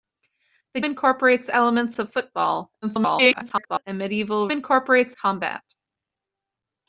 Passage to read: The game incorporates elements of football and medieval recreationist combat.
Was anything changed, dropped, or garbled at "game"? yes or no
yes